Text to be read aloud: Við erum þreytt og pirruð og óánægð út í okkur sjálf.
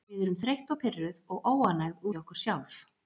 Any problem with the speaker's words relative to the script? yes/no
yes